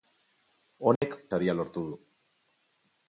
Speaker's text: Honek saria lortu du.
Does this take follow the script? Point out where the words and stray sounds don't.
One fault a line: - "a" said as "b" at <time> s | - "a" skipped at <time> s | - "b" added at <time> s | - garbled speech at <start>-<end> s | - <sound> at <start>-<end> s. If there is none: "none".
- dropout at 1.0-1.0 s